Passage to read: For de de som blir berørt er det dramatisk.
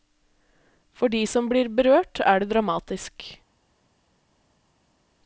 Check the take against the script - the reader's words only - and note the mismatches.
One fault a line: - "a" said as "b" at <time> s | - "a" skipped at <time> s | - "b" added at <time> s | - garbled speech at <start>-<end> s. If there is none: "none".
- "de" skipped at 1.2 s